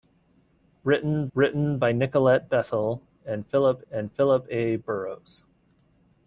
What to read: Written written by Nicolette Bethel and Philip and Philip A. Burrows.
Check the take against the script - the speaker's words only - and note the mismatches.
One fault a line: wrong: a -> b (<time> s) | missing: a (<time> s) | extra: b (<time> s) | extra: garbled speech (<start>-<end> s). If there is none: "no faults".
no faults